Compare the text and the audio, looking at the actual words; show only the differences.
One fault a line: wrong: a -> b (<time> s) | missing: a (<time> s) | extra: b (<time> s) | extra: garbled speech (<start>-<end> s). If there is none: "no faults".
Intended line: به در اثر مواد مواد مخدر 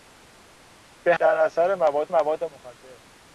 no faults